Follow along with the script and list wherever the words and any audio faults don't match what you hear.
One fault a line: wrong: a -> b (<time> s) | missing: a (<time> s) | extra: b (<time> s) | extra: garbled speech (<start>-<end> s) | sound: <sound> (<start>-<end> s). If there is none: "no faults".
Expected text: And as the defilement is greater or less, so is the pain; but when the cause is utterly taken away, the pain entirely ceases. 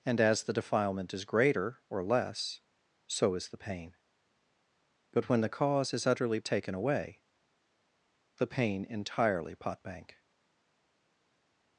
wrong: ceases -> potbank (9.5 s)